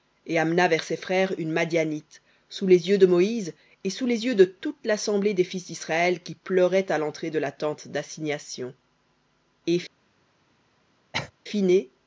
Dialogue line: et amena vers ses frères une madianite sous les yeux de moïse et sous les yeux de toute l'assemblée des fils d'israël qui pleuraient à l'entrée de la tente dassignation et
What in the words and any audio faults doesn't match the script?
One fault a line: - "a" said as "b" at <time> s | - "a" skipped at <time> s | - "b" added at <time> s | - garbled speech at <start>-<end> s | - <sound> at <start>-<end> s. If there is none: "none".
- cough at 11.1-11.3 s